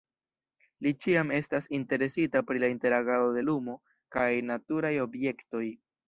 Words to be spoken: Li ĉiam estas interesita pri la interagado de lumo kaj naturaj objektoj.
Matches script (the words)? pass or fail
pass